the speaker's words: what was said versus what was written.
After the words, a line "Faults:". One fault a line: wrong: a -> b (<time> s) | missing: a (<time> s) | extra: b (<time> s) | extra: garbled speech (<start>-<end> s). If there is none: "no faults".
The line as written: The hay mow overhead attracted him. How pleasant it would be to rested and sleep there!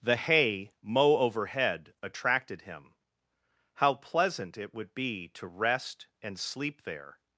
The hay mow overhead attracted him. How pleasant it would be to rest and sleep there!
Faults:
wrong: rested -> rest (5.4 s)